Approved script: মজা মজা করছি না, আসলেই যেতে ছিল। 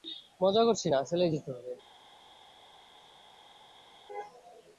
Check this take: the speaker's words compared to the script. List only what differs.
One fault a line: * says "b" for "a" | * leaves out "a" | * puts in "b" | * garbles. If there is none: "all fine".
* leaves out "মজা"
* says "হবে" for "ছিল"